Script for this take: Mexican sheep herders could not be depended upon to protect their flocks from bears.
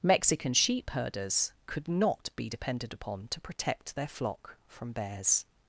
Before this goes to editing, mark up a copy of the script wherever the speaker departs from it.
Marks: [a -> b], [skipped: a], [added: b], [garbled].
Mexican sheep herders could not be depended upon to protect their [flocks -> flock] from bears.